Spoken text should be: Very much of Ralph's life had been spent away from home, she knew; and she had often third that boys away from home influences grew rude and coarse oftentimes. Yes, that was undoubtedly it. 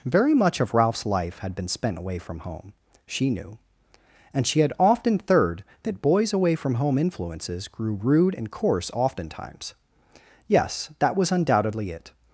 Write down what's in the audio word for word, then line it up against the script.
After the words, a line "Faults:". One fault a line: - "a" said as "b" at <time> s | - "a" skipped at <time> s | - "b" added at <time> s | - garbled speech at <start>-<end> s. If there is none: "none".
Very much of Ralph's life had been spent away from home, she knew; and she had often third that boys away from home influences grew rude and coarse oftentimes. Yes, that was undoubtedly it.
Faults:
none